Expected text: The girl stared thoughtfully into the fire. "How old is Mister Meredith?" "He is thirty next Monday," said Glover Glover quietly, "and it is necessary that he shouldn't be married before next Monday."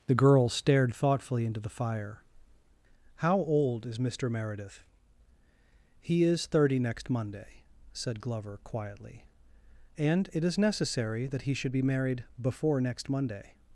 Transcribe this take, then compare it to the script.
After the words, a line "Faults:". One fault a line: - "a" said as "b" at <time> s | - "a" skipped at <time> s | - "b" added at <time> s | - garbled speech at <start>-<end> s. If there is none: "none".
The girl stared thoughtfully into the fire. "How old is Mister Meredith?" "He is thirty next Monday," said Glover quietly, "and it is necessary that he should be married before next Monday."
Faults:
- "Glover" skipped at 8.6 s
- "shouldn't" said as "should" at 11.5 s